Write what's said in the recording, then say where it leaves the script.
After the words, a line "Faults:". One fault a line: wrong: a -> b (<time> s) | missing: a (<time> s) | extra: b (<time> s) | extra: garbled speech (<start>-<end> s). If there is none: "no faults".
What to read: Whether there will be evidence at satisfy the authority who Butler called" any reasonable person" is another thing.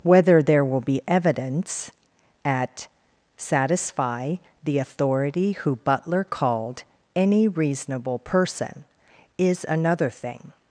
Whether there will be evidence at satisfy the authority who Butler called" any reasonable person" is another thing.
Faults:
no faults